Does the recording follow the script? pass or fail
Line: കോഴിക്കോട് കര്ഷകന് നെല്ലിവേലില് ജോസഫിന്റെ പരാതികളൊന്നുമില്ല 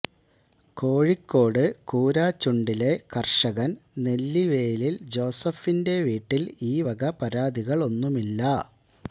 fail